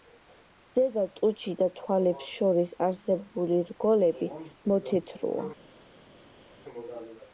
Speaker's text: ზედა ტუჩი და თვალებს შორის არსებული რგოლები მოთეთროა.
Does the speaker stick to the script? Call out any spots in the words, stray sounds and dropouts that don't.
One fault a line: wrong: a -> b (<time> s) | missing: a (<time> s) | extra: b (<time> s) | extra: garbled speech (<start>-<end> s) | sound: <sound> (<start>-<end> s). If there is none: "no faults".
no faults